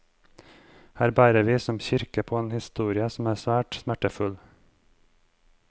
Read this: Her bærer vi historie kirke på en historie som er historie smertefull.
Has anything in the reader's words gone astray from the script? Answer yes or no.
yes